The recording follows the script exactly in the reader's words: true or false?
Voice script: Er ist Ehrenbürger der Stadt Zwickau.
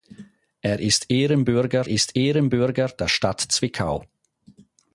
false